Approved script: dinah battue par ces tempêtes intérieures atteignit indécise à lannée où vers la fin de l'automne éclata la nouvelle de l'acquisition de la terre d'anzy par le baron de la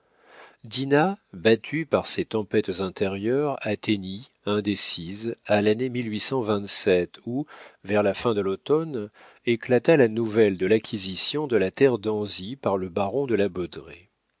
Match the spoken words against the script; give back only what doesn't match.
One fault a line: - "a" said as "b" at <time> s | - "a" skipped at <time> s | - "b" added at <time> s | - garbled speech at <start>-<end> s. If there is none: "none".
none